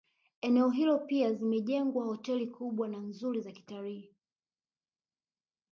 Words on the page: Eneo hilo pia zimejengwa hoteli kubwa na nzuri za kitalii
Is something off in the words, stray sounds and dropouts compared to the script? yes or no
no